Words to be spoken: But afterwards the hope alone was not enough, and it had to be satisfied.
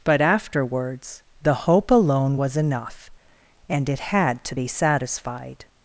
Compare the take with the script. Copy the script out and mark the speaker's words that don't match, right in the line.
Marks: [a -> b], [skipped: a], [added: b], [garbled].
But afterwards the hope alone was [skipped: not] enough, and it had to be satisfied.